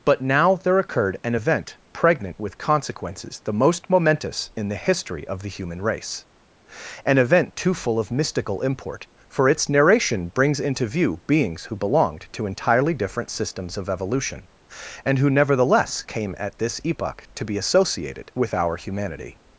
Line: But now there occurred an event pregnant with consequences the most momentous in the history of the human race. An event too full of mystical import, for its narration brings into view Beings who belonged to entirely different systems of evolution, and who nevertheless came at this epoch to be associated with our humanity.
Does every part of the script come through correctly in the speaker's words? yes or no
yes